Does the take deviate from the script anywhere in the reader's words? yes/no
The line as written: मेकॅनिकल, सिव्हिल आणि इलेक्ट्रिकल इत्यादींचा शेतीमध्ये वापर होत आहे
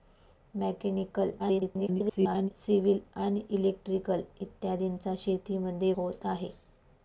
yes